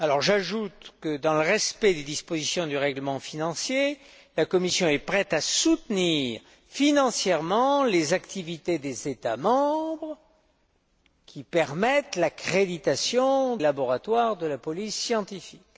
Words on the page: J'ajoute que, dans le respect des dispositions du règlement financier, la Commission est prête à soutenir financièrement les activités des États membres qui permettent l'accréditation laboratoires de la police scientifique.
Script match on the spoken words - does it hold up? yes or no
yes